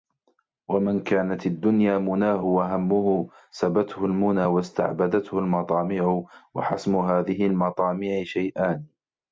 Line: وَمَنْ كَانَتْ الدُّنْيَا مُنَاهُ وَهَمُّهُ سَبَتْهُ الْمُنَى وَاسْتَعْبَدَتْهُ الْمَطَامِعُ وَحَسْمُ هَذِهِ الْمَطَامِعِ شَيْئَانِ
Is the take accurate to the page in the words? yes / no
yes